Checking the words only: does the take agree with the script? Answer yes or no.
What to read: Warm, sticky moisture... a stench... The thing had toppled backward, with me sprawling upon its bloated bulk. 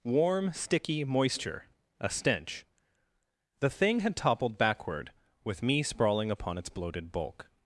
yes